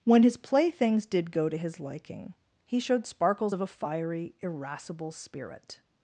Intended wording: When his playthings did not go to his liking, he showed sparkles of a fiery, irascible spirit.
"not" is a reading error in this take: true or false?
true